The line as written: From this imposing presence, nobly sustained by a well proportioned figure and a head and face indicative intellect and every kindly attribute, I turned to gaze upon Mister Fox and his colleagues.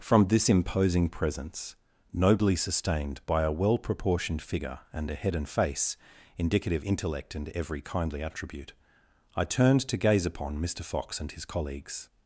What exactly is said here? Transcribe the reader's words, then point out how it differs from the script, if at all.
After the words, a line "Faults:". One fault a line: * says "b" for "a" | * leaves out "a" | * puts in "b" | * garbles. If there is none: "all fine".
From this imposing presence, nobly sustained by a well proportioned figure and a head and face indicative intellect and every kindly attribute, I turned to gaze upon Mister Fox and his colleagues.
Faults:
all fine